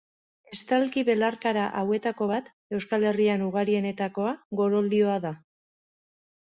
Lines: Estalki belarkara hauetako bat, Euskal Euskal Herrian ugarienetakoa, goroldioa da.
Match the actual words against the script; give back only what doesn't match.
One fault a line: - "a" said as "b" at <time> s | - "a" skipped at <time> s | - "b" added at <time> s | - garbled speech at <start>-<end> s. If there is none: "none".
- "Euskal" skipped at 3.1 s